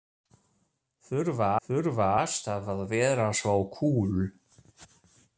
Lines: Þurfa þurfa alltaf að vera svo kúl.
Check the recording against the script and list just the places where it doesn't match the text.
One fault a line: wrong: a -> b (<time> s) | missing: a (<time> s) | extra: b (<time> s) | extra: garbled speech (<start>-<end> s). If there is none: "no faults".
no faults